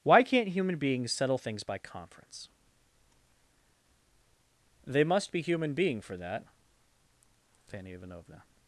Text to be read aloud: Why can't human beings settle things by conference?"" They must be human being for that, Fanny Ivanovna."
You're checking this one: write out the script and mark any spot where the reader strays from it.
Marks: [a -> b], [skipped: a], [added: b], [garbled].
Why can't human beings settle things by conference?"" They must be human being for that, Fanny Ivanovna."